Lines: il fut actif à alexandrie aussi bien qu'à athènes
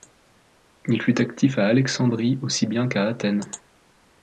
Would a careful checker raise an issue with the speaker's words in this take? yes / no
no